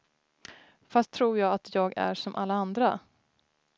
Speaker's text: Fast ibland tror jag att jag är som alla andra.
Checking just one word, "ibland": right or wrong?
wrong